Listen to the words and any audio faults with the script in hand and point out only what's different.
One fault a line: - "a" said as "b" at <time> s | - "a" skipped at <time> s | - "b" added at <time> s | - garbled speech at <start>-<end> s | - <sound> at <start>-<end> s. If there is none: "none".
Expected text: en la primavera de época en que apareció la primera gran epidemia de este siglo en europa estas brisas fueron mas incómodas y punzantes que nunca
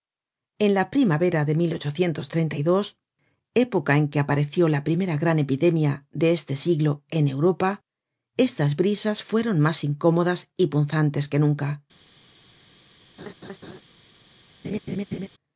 - laugh at 13.2-13.8 s
- laugh at 14.6-15.3 s